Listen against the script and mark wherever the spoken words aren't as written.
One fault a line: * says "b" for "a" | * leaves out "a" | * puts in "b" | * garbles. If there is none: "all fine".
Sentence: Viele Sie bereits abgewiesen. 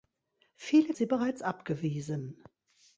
all fine